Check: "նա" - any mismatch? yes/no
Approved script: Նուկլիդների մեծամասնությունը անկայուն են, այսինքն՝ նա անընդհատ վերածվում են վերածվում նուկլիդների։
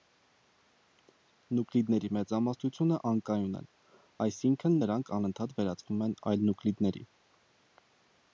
yes